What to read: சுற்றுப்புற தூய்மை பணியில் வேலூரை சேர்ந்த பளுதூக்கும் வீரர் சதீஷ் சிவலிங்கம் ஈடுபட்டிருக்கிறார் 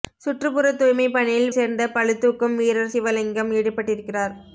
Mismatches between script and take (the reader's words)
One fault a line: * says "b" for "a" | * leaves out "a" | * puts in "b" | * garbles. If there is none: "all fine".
* leaves out "வேலூரை"
* leaves out "சதீஷ்"